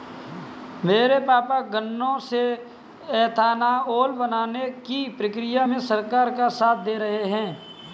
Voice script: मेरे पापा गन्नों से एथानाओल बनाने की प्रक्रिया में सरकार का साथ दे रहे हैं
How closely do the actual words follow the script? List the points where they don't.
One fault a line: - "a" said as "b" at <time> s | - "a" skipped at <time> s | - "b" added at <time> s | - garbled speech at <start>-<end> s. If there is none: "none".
none